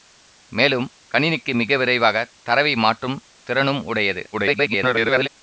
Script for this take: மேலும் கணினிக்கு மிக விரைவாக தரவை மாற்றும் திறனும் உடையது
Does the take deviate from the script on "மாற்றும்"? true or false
false